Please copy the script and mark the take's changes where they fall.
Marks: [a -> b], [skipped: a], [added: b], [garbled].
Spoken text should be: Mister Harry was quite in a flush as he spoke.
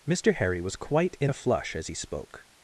Mister Harry was quite in a flush as he spoke.